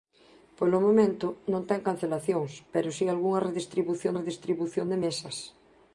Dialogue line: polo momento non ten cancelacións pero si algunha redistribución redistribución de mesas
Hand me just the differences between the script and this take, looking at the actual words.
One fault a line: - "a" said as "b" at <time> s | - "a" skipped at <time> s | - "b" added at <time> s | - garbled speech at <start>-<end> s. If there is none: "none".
none